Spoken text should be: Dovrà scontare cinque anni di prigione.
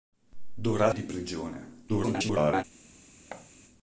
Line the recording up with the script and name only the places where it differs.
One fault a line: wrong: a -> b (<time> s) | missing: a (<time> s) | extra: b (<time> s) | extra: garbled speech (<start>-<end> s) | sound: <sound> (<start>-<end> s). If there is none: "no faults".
missing: scontare cinque anni (0.9 s)
extra: garbled speech (1.9-2.6 s)
sound: thud (3.3-3.5 s)